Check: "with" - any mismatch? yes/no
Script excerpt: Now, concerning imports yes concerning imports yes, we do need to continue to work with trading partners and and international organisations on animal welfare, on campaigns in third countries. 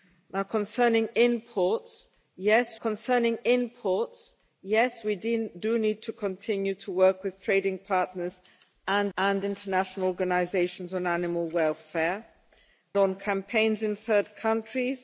no